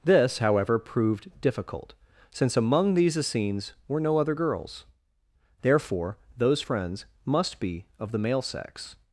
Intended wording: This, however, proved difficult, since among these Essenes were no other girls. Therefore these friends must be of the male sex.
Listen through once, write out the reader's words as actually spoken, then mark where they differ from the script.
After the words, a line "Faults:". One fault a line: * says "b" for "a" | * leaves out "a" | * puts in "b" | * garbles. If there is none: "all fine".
This, however, proved difficult, since among these Essenes were no other girls. Therefore those friends must be of the male sex.
Faults:
* says "those" for "these"